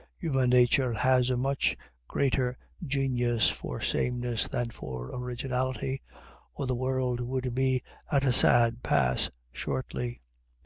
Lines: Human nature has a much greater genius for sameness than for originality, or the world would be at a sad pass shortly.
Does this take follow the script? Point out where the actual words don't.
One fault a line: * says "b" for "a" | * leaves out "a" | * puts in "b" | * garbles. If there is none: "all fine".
all fine